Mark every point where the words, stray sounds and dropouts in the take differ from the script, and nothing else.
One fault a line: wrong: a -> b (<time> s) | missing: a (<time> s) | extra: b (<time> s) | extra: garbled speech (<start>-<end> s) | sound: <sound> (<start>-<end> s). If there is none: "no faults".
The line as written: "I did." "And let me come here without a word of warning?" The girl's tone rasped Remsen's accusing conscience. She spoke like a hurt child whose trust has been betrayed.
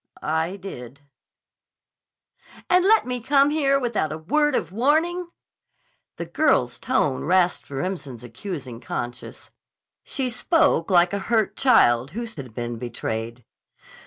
missing: trust (12.3 s)